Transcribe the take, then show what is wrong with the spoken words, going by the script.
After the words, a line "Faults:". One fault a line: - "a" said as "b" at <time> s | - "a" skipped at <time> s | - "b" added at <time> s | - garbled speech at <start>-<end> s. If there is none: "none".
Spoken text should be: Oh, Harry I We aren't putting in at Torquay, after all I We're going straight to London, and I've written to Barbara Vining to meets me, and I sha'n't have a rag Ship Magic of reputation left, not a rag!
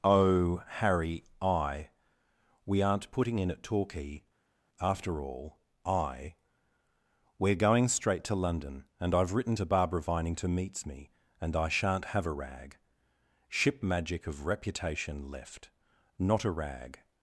Oh, Harry I We aren't putting in at Torquay, after all I We're going straight to London, and I've written to Barbara Vining to meets me, and I sha'n't have a rag Ship Magic of reputation left, not a rag!
Faults:
none